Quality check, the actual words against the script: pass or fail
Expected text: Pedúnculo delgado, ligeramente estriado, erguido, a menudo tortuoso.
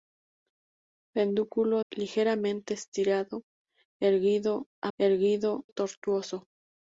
fail